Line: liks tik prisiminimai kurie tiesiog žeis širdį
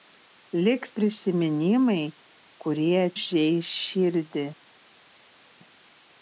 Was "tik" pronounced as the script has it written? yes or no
no